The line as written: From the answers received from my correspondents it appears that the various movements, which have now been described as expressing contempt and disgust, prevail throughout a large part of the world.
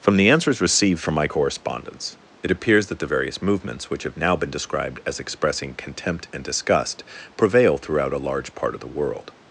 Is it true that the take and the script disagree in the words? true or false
false